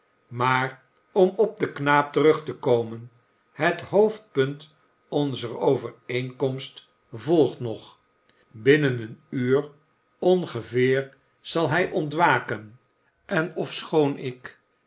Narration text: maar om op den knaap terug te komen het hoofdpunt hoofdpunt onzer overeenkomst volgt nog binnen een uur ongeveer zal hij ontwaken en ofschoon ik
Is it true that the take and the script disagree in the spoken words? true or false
true